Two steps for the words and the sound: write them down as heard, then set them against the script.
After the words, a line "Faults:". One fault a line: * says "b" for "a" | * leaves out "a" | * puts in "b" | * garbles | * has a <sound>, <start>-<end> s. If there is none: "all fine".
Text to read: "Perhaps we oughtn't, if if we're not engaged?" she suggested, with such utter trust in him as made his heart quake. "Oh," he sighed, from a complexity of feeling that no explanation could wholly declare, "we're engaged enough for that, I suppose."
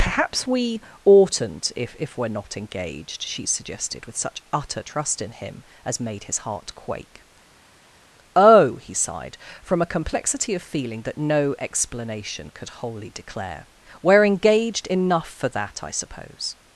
"Perhaps we oughtn't, if if we're not engaged?" she suggested, with such utter trust in him as made his heart quake. "Oh," he sighed, from a complexity of feeling that no explanation could wholly declare, "we're engaged enough for that, I suppose."
Faults:
all fine